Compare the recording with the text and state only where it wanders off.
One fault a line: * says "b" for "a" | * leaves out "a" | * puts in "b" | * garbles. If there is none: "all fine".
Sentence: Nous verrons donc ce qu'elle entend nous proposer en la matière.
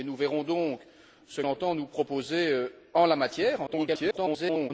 * leaves out "qu'elle"
* garbles